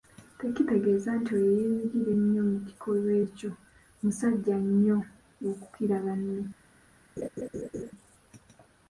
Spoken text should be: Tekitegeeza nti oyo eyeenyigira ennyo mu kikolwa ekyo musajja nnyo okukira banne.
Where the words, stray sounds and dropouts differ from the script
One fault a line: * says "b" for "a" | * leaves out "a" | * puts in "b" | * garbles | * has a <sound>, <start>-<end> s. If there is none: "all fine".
* has a laugh, 7.2-7.9 s